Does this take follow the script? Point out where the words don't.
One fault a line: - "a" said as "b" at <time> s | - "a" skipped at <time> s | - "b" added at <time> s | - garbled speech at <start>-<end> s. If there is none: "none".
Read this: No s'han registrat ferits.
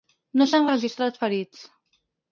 none